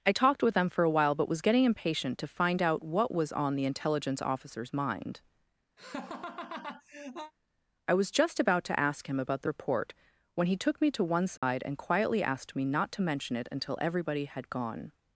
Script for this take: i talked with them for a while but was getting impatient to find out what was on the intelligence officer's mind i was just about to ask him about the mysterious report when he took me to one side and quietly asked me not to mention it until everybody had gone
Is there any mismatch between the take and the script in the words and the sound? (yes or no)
yes